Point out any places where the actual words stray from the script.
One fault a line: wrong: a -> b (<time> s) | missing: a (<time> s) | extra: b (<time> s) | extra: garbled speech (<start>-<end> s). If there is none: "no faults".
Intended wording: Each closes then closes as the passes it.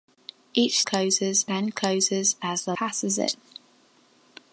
no faults